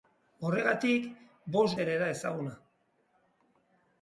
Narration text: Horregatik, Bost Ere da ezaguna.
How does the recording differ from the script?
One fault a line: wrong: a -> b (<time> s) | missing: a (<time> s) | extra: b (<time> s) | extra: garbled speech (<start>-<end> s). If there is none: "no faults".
no faults